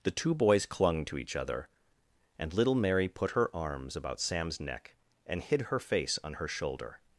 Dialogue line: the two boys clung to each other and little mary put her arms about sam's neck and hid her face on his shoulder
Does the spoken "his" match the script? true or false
false